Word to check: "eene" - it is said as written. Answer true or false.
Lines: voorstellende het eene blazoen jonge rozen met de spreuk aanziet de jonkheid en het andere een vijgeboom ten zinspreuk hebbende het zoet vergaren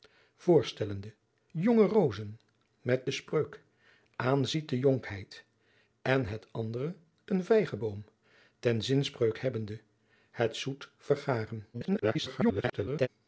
false